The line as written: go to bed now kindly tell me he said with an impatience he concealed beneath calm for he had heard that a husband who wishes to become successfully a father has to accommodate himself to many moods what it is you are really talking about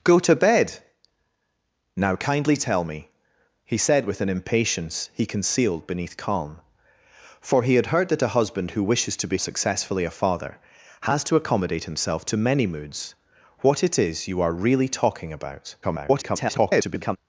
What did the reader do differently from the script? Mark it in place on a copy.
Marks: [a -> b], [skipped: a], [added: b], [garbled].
go to bed now kindly tell me he said with an impatience he concealed beneath calm for he had heard that a husband who wishes to [skipped: become] successfully a father has to accommodate himself to many moods what it is you are really talking about [garbled]